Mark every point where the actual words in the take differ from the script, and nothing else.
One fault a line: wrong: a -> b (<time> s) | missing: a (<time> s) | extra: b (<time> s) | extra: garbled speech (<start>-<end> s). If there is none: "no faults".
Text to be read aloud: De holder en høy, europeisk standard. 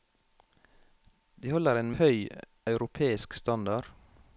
no faults